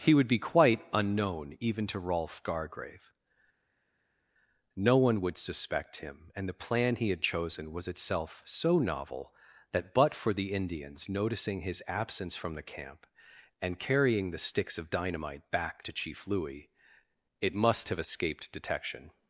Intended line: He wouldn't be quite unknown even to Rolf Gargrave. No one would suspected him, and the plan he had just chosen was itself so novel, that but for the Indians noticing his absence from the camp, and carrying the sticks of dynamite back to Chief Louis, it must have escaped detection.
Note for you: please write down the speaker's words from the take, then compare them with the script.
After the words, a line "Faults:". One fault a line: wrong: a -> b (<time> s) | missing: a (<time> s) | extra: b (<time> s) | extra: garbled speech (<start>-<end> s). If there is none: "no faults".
He would be quite unknown even to Rolf Gargrave. No one would suspect him, and the plan he had chosen was itself so novel, that but for the Indians noticing his absence from the camp, and carrying the sticks of dynamite back to Chief Louis, it must have escaped detection.
Faults:
wrong: wouldn't -> would (0.1 s)
wrong: suspected -> suspect (5.4 s)
missing: just (7.2 s)